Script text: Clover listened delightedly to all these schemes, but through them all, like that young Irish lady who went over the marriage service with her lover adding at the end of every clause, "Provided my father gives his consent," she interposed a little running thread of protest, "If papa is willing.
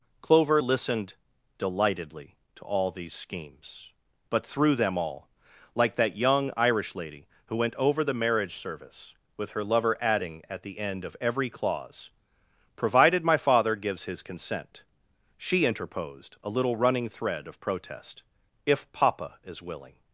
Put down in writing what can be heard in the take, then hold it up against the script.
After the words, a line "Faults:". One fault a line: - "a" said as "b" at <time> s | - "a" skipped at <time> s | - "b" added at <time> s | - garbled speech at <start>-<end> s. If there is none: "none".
Clover listened delightedly to all these schemes, but through them all, like that young Irish lady who went over the marriage service with her lover adding at the end of every clause, "Provided my father gives his consent," she interposed a little running thread of protest, "If papa is willing.
Faults:
none